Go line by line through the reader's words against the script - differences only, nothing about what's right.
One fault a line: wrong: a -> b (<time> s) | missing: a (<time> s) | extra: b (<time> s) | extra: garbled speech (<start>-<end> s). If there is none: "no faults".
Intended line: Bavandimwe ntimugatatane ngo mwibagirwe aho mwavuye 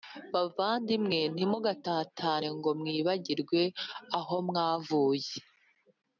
no faults